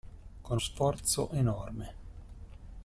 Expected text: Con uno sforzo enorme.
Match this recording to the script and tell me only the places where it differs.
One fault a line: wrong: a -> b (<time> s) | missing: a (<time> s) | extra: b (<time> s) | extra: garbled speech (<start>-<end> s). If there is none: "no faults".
missing: uno (0.6 s)